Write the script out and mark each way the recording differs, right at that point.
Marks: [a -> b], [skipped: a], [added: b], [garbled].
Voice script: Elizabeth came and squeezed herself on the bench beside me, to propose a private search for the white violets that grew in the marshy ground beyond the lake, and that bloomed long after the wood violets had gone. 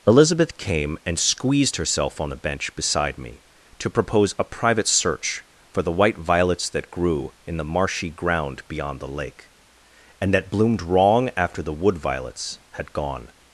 Elizabeth came and squeezed herself on the bench beside me, to propose a private search for the white violets that grew in the marshy ground beyond the lake, and that bloomed [long -> wrong] after the wood violets had gone.